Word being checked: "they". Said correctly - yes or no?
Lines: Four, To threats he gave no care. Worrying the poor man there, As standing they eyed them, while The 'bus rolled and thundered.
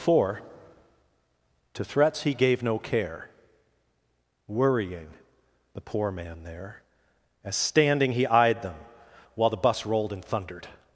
no